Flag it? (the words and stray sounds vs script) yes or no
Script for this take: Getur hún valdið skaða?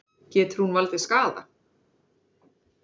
no